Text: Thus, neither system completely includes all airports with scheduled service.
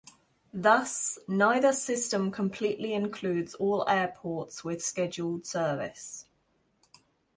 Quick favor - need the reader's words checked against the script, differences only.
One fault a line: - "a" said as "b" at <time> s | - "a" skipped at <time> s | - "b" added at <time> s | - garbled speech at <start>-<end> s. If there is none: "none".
none